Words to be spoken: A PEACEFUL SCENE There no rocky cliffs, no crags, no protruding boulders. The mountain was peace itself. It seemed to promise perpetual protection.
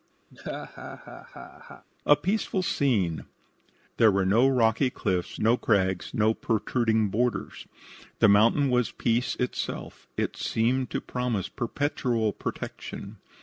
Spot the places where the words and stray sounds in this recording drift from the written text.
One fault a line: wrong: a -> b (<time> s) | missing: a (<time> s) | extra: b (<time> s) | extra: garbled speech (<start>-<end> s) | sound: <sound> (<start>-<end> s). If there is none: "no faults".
sound: laugh (0.3-1.9 s)
extra: were (4.1 s)